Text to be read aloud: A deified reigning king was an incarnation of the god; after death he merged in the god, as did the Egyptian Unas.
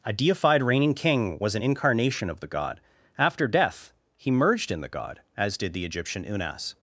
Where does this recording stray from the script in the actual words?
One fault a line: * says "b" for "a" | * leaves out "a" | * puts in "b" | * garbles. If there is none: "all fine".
all fine